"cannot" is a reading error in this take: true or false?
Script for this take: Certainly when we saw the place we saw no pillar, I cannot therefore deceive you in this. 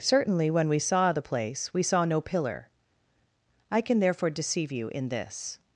true